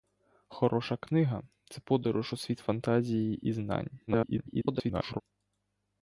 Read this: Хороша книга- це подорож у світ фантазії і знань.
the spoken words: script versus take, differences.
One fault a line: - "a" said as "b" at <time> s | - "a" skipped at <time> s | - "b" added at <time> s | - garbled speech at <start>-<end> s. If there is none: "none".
- garbled speech at 4.1-5.2 s